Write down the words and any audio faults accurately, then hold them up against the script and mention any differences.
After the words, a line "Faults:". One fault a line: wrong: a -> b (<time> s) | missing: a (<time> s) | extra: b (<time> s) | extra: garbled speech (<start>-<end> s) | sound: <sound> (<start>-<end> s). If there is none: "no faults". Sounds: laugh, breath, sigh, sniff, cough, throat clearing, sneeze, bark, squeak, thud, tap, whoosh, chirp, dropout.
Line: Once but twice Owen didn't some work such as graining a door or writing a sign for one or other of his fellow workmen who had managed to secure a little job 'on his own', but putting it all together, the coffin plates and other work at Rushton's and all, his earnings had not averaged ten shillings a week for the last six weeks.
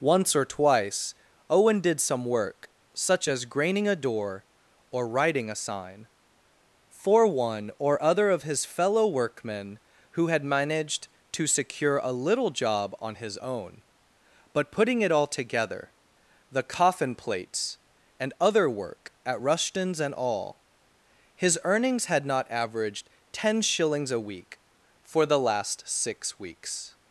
Once or twice Owen did some work such as graining a door or writing a sign for one or other of his fellow workmen who had managed to secure a little job 'on his own', but putting it all together, the coffin plates and other work at Rushton's and all, his earnings had not averaged ten shillings a week for the last six weeks.
Faults:
wrong: but -> or (0.3 s)
wrong: didn't -> did (1.8 s)